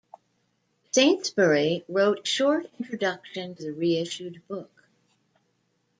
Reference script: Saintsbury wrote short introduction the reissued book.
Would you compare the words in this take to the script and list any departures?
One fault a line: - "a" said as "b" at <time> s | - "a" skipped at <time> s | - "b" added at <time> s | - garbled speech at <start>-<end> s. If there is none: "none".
none